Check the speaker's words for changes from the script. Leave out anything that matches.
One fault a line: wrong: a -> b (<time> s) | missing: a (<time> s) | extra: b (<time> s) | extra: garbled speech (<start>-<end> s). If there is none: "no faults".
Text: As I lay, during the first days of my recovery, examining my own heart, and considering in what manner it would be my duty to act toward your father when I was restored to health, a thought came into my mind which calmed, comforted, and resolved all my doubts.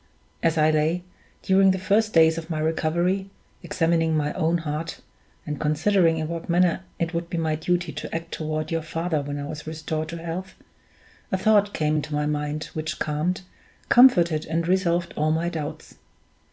no faults